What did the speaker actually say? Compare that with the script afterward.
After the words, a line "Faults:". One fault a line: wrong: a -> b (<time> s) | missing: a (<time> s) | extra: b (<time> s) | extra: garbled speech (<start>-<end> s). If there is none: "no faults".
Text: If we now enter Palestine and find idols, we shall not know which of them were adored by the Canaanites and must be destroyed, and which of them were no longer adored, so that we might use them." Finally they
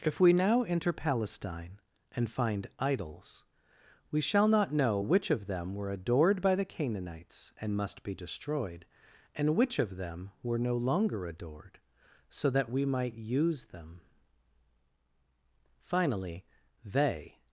If we now enter Palestine and find idols, we shall not know which of them were adored by the Canaanites and must be destroyed, and which of them were no longer adored, so that we might use them." Finally they
Faults:
no faults